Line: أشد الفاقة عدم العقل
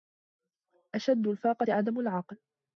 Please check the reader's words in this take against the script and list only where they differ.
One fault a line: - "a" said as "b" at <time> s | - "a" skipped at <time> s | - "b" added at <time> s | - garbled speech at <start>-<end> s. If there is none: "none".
none